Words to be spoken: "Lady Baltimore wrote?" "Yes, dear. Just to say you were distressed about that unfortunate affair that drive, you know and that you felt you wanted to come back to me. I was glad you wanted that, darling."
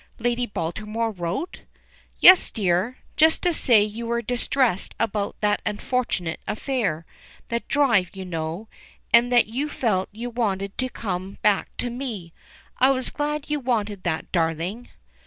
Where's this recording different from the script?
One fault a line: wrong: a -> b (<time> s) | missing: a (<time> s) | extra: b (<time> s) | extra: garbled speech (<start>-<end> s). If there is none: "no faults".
no faults